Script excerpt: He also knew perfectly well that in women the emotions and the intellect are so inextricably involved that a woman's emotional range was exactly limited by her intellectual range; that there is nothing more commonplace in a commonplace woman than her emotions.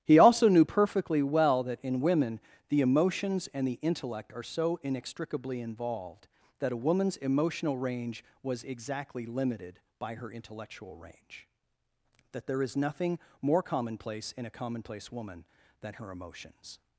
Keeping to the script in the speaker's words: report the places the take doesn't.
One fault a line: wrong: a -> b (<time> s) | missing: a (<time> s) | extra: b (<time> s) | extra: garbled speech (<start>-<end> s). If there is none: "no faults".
no faults